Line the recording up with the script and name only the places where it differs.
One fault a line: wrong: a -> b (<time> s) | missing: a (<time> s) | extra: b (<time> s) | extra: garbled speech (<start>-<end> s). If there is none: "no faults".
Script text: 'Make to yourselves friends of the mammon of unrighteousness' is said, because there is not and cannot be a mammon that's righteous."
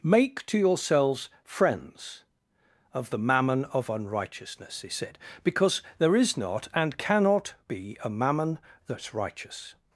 wrong: is -> he (4.8 s)